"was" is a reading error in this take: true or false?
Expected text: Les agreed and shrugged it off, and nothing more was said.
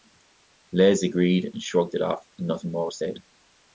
false